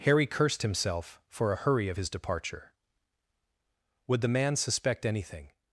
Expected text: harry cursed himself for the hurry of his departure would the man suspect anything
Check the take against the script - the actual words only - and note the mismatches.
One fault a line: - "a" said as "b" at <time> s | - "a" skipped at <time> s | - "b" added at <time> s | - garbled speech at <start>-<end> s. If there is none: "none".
- "the" said as "a" at 1.5 s